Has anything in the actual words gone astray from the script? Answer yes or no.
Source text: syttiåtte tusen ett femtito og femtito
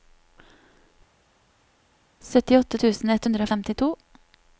yes